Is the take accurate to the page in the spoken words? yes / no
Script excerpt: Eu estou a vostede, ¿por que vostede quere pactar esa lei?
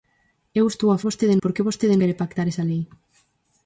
yes